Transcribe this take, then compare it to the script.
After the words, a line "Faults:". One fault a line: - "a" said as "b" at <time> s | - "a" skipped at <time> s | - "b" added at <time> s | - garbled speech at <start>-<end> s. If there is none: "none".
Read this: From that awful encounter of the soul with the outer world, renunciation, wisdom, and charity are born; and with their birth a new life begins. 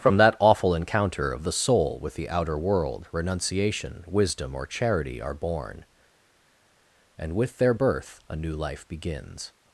From that awful encounter of the soul with the outer world, renunciation, wisdom, or charity are born; and with their birth a new life begins.
Faults:
- "and" said as "or" at 4.5 s